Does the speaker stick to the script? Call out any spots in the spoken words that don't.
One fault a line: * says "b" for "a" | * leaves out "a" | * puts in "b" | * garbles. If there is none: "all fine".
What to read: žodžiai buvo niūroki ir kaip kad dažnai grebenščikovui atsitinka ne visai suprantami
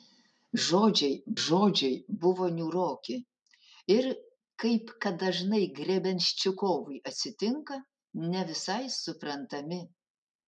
* puts in "žodžiai"